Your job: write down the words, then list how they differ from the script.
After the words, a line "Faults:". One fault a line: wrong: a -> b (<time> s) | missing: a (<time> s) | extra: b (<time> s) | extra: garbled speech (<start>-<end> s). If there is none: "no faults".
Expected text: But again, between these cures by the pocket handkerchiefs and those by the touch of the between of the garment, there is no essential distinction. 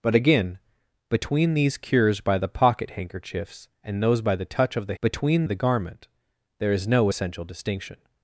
But again, between these cures by the pocket handkerchiefs and those by the touch of the between of the garment, there is no essential distinction.
Faults:
no faults